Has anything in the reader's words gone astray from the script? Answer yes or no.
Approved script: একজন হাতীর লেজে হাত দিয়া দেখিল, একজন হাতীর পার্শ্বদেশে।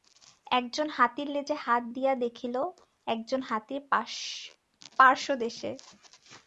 no